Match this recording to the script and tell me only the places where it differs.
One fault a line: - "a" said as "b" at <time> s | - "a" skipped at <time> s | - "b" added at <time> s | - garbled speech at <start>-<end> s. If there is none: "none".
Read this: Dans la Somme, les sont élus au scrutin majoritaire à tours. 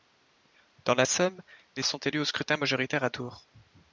none